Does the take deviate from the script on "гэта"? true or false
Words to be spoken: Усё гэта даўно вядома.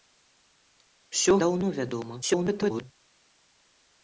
true